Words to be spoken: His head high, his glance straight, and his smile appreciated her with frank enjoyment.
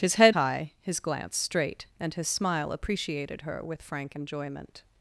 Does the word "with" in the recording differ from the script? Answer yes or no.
no